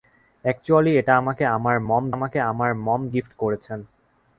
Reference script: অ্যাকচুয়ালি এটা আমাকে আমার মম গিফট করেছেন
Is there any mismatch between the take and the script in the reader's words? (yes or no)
yes